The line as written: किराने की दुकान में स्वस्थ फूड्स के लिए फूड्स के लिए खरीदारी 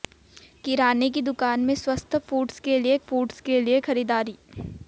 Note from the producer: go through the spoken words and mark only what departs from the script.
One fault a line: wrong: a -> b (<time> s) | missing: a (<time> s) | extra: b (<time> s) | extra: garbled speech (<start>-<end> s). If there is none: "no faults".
no faults